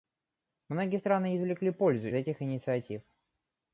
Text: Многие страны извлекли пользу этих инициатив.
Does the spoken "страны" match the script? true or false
true